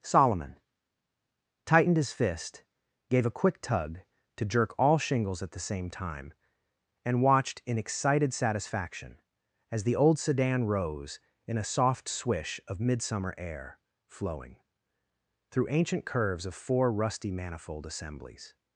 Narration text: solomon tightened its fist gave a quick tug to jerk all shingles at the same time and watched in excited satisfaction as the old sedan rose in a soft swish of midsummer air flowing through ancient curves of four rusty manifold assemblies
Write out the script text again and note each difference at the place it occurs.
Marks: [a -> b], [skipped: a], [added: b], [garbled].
solomon tightened [its -> his] fist gave a quick tug to jerk all shingles at the same time and watched in excited satisfaction as the old sedan rose in a soft swish of midsummer air flowing through ancient curves of four rusty manifold assemblies